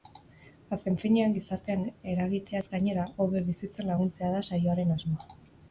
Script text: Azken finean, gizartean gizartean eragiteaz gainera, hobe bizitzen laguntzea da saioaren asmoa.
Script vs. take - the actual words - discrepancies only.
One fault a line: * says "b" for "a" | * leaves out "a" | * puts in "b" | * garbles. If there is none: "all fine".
* leaves out "gizartean"